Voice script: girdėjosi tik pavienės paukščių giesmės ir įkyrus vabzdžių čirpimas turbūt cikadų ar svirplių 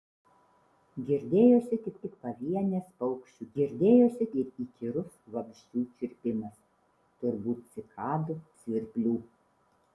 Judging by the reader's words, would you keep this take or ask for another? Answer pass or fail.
fail